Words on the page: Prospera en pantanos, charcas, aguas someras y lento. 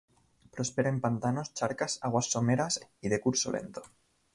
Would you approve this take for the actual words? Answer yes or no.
no